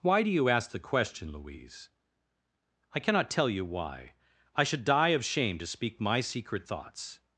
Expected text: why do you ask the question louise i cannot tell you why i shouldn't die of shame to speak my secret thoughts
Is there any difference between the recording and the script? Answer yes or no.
yes